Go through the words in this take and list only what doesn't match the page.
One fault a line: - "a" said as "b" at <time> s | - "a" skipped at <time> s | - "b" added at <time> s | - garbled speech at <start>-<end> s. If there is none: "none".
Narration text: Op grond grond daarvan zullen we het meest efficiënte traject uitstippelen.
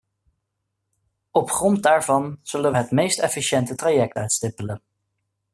- "grond" skipped at 1.8 s